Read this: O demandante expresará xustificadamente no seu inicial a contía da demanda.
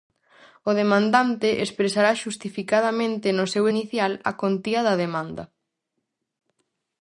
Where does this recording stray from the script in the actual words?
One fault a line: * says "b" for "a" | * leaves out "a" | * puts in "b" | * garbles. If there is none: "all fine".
all fine